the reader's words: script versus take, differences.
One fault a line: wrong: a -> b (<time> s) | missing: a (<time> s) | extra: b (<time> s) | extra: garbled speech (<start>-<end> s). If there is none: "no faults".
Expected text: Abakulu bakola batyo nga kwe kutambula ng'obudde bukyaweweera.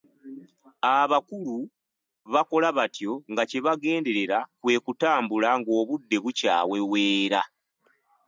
extra: kye bagenderera (3.5 s)